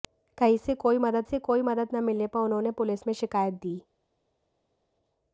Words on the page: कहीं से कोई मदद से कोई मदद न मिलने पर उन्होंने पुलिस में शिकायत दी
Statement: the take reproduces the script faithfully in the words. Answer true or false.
true